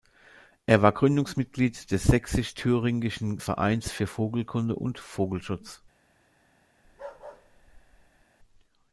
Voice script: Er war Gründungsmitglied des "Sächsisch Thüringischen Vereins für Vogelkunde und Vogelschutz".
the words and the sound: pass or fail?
fail